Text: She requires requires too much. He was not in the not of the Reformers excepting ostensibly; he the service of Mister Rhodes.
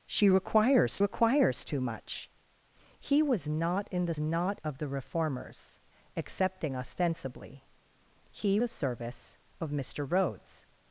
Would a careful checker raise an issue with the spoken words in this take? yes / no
no